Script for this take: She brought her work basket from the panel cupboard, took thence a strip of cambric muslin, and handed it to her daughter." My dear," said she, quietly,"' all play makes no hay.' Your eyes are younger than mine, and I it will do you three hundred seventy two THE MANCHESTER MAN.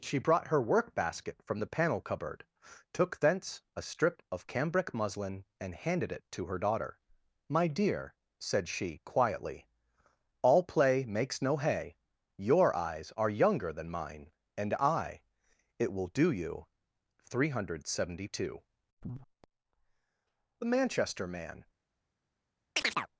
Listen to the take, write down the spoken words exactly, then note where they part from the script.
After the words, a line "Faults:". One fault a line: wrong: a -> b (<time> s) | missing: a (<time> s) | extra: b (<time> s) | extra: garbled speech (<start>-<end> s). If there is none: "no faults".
She brought her work basket from the panel cupboard, took thence a strip of cambric muslin, and handed it to her daughter." My dear," said she, quietly,"' all play makes no hay.' Your eyes are younger than mine, and I it will do you three hundred seventy two THE MANCHESTER MAN.
Faults:
no faults